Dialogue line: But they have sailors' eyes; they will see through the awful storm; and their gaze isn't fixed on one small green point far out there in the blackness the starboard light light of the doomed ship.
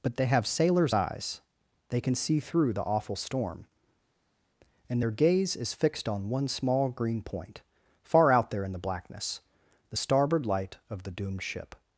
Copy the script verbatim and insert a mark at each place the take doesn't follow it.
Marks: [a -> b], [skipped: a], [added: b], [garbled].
But they have sailors' eyes; they [will -> can] see through the awful storm; and their gaze [isn't -> is] fixed on one small green point far out there in the blackness the starboard light [skipped: light] of the doomed ship.